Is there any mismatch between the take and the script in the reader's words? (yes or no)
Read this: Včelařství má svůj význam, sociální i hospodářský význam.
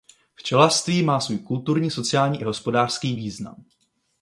yes